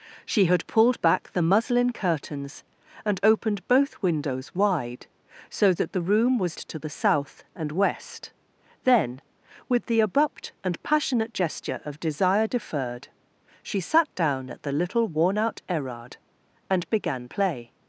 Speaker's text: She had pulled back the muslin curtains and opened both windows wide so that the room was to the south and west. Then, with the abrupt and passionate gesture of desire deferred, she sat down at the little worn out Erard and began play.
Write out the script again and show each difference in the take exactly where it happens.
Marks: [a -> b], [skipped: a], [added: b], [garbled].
She had pulled back the muslin curtains and opened both windows wide so that the room was to the south and west. Then, with the abrupt and passionate gesture of desire deferred, she sat down at the little worn out Erard and began play.